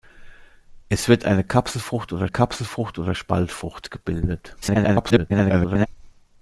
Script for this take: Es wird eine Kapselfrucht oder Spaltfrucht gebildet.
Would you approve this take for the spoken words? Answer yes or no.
no